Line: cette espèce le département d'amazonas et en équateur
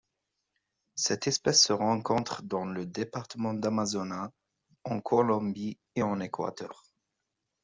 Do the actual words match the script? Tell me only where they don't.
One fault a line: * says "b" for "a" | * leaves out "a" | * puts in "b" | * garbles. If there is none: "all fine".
* puts in "se rencontre dans"
* puts in "en colombie"